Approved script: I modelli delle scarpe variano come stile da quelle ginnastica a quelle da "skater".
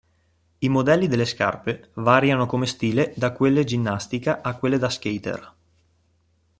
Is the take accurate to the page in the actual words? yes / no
yes